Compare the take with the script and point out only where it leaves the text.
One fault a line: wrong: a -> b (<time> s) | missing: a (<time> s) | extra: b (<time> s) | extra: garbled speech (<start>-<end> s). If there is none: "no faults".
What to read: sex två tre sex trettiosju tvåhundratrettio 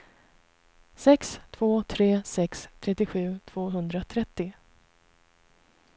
no faults